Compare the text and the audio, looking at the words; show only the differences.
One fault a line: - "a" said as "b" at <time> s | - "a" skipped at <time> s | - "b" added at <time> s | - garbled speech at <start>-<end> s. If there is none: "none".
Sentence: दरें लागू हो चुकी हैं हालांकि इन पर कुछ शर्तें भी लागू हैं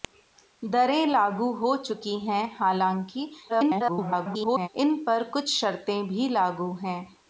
- garbled speech at 3.5-4.7 s